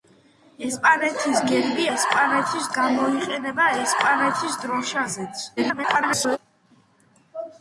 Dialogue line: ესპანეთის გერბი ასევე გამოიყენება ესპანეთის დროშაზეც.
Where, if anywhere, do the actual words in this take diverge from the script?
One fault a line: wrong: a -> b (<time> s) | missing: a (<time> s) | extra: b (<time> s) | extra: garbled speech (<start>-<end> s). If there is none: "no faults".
wrong: ასევე -> ესპანეთის (2.0 s)
extra: garbled speech (5.6-6.4 s)